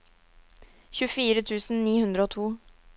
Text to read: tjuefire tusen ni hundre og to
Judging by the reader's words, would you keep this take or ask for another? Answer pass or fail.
pass